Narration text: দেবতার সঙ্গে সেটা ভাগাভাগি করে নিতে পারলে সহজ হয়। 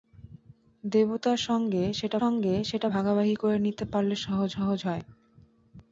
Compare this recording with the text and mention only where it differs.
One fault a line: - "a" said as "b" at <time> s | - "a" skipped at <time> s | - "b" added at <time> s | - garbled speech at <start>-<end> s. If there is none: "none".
- "সঙ্গে সেটা" added at 2.2 s
- "সহজ" added at 4.5 s